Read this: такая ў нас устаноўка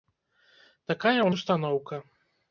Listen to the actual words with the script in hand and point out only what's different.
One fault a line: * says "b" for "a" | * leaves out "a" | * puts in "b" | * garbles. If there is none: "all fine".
* leaves out "нас"